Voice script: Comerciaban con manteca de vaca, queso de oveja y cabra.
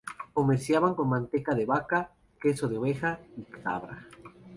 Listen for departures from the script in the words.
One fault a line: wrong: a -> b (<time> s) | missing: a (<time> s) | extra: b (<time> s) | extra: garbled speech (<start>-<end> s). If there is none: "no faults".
no faults